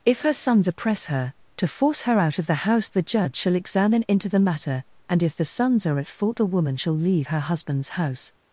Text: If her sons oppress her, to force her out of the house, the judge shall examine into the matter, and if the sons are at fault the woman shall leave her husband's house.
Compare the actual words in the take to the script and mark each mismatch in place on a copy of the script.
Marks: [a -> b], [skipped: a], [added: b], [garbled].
If her sons oppress her, to force her out of the house, the judge shall examine into the matter, and if the sons are at fault the woman shall leave her husband's house.